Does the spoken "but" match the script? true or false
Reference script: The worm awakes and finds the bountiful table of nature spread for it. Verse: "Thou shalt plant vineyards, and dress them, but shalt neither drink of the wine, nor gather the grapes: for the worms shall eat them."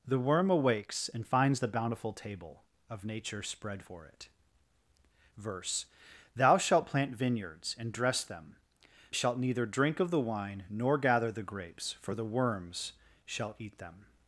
false